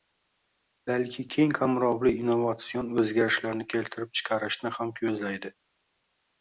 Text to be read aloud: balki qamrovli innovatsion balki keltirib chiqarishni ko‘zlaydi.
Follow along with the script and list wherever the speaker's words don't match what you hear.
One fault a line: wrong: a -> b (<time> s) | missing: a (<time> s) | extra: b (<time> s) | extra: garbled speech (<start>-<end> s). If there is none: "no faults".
extra: keng (1.3 s)
wrong: balki -> o‘zgarishlarni (3.1 s)
extra: ham (4.8 s)